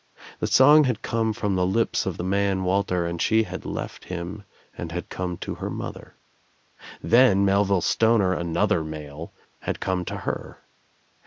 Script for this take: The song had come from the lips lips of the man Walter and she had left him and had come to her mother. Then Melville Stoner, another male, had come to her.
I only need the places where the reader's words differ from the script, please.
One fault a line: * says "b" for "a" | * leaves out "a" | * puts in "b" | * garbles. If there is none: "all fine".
* leaves out "lips"